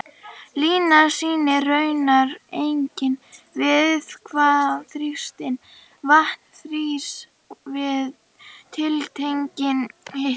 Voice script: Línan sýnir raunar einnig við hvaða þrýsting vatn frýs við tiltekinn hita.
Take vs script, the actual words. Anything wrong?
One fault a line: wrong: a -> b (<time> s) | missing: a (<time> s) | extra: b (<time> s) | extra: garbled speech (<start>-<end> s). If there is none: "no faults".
no faults